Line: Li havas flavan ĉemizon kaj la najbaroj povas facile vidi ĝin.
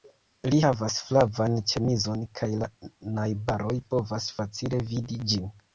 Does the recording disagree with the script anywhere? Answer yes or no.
no